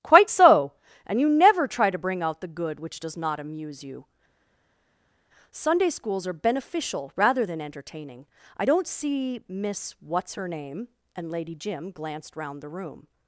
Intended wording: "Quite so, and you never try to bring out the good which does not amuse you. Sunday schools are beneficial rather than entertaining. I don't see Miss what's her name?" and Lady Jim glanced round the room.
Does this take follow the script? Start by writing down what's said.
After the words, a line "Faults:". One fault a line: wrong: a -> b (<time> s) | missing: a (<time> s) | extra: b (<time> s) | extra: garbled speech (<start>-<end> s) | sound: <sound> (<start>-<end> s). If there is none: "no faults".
"Quite so, and you never try to bring out the good which does not amuse you. Sunday schools are beneficial rather than entertaining. I don't see Miss what's her name?" and Lady Jim glanced round the room.
Faults:
no faults